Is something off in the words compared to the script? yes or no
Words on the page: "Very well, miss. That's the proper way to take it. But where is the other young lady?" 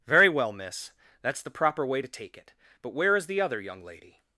no